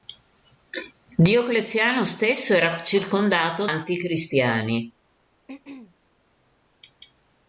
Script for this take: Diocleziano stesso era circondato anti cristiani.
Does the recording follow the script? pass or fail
pass